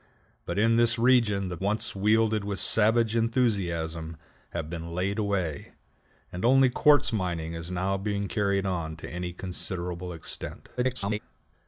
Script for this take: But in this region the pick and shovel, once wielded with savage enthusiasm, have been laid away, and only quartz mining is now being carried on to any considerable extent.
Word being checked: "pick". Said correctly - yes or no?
no